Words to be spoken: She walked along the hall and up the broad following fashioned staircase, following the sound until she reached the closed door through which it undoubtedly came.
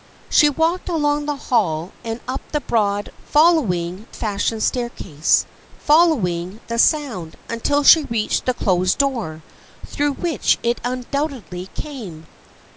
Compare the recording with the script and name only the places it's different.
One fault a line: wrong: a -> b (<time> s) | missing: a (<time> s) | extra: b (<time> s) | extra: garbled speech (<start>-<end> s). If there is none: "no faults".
no faults